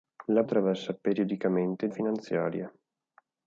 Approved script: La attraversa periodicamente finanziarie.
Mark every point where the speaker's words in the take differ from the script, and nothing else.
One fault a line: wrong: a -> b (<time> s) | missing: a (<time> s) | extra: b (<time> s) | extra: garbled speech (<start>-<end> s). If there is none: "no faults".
no faults